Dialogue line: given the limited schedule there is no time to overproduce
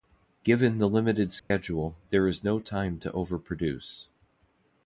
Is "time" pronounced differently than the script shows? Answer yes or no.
no